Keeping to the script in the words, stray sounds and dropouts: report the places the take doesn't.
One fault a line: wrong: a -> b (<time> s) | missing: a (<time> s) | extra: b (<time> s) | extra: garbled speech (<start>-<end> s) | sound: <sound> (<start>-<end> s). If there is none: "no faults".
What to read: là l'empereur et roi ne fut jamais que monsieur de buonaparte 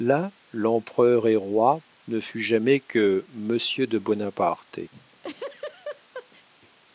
sound: laugh (4.9-6.5 s)